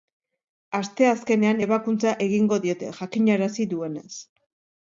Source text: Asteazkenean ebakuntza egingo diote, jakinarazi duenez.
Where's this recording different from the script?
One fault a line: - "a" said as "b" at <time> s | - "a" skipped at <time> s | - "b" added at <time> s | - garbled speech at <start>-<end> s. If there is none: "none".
none